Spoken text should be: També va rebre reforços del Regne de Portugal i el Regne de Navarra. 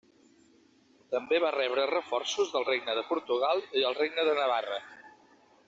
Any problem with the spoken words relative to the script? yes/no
no